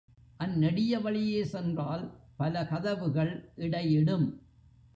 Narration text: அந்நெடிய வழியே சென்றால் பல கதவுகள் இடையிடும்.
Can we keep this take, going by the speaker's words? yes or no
yes